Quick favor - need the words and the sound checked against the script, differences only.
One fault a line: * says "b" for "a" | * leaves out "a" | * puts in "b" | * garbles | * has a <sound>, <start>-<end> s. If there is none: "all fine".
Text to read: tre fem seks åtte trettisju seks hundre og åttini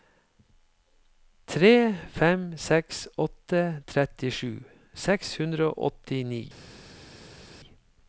all fine